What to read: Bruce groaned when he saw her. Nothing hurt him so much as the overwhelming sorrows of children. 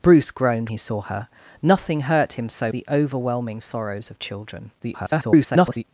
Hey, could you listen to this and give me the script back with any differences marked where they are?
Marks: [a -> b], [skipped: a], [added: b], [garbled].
Bruce groaned [skipped: when] he saw her. Nothing hurt him so [skipped: much as] the overwhelming sorrows of children. [garbled]